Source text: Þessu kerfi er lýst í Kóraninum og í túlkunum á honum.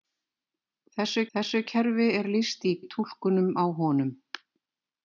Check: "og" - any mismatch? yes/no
yes